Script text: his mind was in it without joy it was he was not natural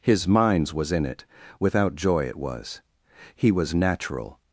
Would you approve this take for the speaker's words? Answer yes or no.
no